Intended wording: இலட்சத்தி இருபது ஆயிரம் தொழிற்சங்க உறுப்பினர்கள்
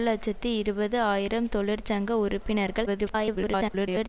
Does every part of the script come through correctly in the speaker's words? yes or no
no